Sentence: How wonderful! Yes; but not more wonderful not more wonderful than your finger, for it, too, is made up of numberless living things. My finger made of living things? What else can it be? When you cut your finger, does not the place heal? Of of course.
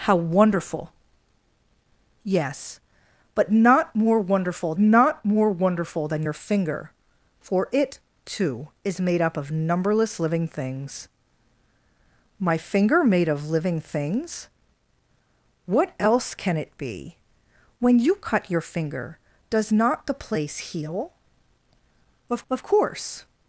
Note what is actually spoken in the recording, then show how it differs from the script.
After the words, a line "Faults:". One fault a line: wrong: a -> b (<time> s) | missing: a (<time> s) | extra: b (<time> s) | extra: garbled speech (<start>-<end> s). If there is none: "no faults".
How wonderful! Yes; but not more wonderful not more wonderful than your finger, for it, too, is made up of numberless living things. My finger made of living things? What else can it be? When you cut your finger, does not the place heal? Of of course.
Faults:
no faults